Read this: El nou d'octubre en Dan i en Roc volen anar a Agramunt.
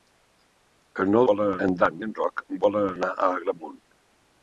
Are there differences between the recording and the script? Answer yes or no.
yes